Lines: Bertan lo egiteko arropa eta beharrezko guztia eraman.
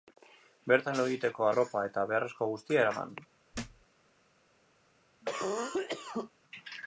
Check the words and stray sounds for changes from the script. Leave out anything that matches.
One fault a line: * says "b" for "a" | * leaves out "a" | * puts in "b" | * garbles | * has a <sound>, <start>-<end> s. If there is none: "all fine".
* has a thud, 3.5-3.9 s
* has a cough, 5.2-6.3 s